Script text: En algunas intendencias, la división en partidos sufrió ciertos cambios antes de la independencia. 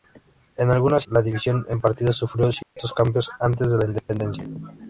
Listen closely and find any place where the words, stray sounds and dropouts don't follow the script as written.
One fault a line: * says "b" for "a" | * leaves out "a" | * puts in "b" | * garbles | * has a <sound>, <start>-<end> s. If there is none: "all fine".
* leaves out "intendencias"
* has a dropout, 2.6-2.8 s